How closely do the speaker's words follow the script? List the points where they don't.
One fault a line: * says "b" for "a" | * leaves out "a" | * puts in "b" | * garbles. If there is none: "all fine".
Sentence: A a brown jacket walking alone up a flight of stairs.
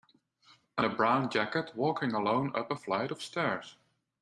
all fine